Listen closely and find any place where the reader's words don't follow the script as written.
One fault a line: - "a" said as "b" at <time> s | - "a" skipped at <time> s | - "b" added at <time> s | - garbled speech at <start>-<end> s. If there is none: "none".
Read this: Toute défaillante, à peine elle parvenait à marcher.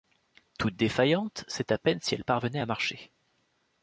- "c'est" added at 1.5 s
- "si" added at 2.0 s